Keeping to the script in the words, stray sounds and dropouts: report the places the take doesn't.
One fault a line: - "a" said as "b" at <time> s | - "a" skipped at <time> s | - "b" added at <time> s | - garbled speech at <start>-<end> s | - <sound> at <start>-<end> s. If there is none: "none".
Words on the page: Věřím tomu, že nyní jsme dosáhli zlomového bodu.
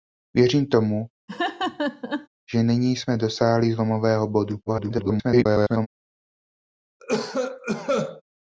- laugh at 1.3-2.3 s
- garbled speech at 4.7-5.9 s
- cough at 7.0-8.2 s